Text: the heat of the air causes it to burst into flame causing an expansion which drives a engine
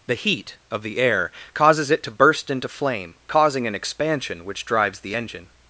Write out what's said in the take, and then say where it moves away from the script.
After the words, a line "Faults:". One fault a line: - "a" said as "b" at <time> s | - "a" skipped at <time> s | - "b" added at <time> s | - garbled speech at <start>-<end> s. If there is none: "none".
the heat of the air causes it to burst into flame causing an expansion which drives the engine
Faults:
- "a" said as "the" at 5.0 s